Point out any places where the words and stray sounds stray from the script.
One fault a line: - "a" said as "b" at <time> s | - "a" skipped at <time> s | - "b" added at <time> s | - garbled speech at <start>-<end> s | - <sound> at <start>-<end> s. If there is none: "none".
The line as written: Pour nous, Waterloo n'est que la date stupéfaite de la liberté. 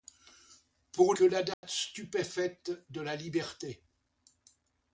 - "nous Waterloo n'est" skipped at 1.1 s
- dropout at 1.5-1.6 s